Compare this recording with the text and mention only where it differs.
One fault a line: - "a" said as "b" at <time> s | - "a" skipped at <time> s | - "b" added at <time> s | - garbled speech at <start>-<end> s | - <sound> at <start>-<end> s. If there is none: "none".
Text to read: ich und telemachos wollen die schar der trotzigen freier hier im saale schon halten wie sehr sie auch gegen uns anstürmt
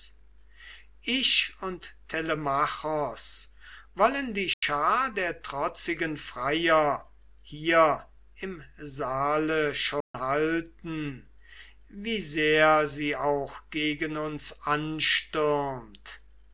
- dropout at 4.5-4.6 s
- dropout at 10.0-10.1 s